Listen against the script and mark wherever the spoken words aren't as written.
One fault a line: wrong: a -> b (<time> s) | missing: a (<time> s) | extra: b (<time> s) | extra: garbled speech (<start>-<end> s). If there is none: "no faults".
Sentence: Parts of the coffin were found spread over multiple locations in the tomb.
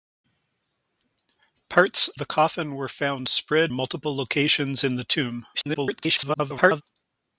missing: of (2.1 s)
missing: over (3.7 s)
extra: garbled speech (5.5-6.8 s)